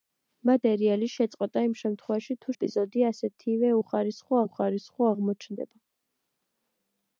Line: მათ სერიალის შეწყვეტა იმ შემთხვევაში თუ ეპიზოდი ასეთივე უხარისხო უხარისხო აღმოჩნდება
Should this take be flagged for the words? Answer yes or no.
no